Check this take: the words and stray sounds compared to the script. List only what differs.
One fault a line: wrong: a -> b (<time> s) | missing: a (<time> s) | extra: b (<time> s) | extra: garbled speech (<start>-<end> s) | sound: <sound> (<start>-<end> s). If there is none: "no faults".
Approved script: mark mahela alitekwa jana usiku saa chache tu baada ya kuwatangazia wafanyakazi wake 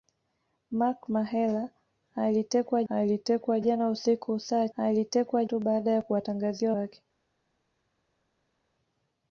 extra: alitekwa (2.9 s)
wrong: chache -> alitekwa (4.8 s)
missing: wafanyakazi (6.7 s)